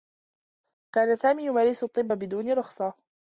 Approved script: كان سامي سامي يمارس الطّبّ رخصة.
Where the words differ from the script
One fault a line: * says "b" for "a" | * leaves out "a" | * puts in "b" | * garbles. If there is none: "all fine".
* leaves out "سامي"
* puts in "بدون"